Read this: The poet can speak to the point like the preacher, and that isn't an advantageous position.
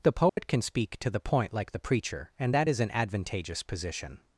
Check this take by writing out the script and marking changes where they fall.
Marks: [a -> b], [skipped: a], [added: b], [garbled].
The poet can speak to the point like the preacher, and that [isn't -> is] an advantageous position.